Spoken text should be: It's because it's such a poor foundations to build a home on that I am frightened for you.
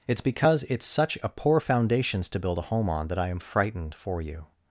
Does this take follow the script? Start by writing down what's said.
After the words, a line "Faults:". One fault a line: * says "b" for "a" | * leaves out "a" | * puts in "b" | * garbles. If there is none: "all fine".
It's because it's such a poor foundations to build a home on that I am frightened for you.
Faults:
all fine